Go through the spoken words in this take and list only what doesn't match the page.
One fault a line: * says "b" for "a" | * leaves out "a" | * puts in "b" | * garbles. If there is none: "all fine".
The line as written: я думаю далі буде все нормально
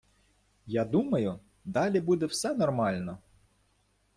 all fine